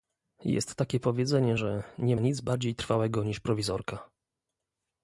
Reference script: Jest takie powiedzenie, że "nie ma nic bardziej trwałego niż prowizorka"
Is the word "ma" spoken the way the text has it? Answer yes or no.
no